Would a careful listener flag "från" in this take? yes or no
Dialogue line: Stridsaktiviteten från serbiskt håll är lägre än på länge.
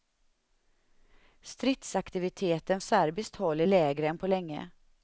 yes